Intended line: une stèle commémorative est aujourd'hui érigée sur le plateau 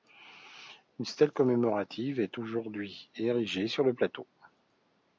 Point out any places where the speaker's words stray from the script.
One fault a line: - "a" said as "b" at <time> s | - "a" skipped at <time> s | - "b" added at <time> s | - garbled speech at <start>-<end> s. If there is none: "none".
none